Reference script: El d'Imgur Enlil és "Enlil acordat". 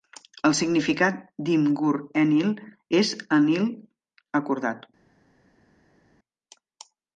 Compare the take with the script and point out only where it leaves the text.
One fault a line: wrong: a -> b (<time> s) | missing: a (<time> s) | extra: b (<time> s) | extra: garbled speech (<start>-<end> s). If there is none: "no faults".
extra: significat (0.6 s)